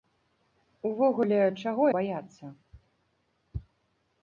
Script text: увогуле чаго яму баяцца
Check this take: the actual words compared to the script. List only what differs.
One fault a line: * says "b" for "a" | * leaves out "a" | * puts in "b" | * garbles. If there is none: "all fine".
* leaves out "яму"